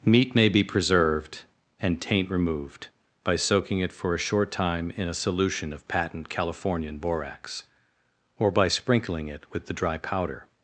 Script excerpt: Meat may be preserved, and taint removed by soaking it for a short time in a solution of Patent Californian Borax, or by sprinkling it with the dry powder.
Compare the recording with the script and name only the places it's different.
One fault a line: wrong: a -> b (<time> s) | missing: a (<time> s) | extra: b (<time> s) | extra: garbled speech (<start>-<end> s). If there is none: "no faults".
no faults